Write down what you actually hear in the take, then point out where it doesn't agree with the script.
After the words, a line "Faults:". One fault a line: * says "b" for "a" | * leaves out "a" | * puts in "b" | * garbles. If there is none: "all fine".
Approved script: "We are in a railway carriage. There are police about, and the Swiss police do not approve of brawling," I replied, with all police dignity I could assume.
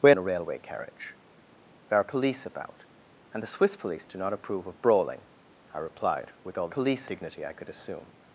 "We are in a railway carriage. There are police about, and the Swiss police do not approve of brawling," I replied, with all police dignity I could assume.
Faults:
all fine